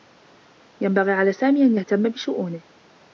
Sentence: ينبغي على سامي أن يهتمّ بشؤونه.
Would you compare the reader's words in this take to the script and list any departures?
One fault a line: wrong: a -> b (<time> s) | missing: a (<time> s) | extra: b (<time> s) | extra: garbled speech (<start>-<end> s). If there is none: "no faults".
no faults